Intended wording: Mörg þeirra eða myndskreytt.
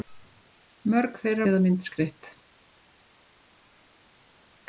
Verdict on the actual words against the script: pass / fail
pass